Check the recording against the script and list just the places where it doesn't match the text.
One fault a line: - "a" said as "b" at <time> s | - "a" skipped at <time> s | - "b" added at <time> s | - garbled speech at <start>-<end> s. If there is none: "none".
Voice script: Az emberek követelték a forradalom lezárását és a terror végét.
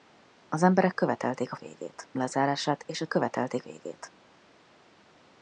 - "forradalom" said as "végét" at 1.6 s
- "terror" said as "követelték" at 3.1 s